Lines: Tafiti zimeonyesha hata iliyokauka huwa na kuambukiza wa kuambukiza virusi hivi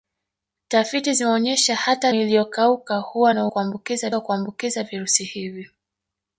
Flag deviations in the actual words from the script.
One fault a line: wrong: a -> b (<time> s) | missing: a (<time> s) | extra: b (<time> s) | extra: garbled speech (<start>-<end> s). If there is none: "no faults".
no faults